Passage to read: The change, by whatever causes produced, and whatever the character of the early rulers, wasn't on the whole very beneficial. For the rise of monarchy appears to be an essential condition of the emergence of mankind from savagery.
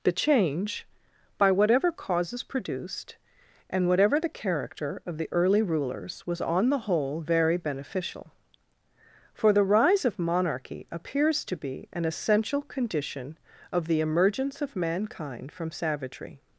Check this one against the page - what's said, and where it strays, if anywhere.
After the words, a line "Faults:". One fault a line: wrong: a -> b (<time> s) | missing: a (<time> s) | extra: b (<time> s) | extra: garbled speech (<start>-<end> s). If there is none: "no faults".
The change, by whatever causes produced, and whatever the character of the early rulers, was on the whole very beneficial. For the rise of monarchy appears to be an essential condition of the emergence of mankind from savagery.
Faults:
wrong: wasn't -> was (6.2 s)